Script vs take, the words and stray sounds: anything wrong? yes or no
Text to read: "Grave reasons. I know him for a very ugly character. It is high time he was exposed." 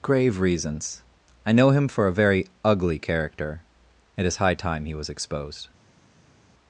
no